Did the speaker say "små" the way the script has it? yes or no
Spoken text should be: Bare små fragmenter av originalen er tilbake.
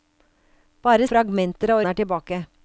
no